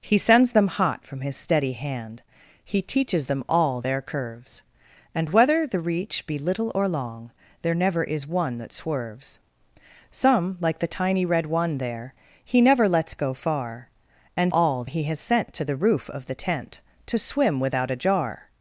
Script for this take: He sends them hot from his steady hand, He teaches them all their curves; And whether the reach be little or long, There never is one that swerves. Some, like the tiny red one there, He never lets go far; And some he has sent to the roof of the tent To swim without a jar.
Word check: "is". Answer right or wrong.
right